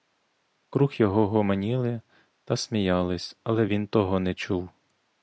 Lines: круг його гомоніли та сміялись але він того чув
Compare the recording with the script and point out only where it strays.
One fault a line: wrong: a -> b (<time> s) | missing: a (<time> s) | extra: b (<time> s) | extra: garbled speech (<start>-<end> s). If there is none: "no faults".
extra: не (4.2 s)